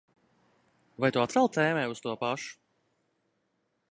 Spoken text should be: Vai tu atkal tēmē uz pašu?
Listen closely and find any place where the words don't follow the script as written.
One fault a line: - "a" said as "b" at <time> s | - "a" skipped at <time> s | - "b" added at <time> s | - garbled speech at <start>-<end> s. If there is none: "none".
- "to" added at 2.0 s